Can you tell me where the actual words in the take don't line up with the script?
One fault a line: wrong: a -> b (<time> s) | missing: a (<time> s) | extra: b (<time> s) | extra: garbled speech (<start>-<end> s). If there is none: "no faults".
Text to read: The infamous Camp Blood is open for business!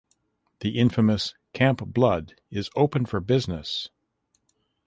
no faults